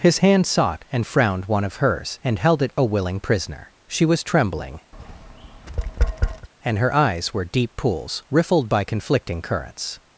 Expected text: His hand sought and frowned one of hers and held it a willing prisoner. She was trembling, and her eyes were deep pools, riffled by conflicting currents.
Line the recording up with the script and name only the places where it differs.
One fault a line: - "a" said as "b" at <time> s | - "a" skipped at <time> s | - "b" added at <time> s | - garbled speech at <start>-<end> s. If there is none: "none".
none